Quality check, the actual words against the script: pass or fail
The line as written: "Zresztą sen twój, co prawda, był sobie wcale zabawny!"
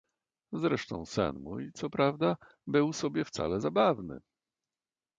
fail